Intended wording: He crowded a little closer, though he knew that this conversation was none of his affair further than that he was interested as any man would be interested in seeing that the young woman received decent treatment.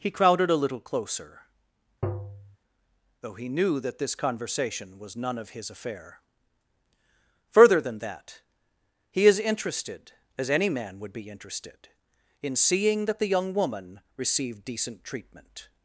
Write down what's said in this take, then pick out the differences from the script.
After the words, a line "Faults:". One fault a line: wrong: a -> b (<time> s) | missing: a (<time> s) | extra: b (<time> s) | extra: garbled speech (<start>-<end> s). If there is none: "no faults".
He crowded a little closer, though he knew that this conversation was none of his affair further than that he is interested as any man would be interested in seeing that the young woman received decent treatment.
Faults:
wrong: was -> is (9.3 s)